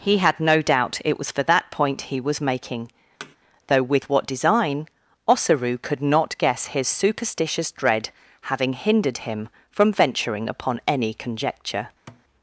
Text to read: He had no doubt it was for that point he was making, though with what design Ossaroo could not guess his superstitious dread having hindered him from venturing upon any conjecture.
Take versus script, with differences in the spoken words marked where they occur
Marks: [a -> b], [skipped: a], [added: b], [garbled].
He had no doubt it was for that point he was making, though with what design Ossaroo could not guess his superstitious dread having hindered him from venturing upon any conjecture.